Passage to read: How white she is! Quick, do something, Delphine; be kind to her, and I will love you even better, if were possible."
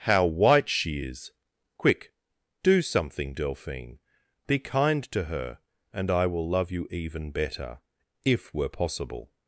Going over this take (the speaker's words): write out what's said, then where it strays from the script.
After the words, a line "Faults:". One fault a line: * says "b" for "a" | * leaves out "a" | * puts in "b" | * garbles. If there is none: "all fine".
How white she is! Quick, do something, Delphine; be kind to her, and I will love you even better, if were possible."
Faults:
all fine